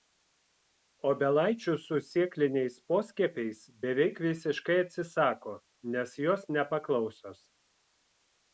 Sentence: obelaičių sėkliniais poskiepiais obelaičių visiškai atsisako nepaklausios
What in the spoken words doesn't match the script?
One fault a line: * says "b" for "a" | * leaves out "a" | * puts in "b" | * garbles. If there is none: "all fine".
* puts in "su"
* says "beveik" for "obelaičių"
* puts in "nes jos"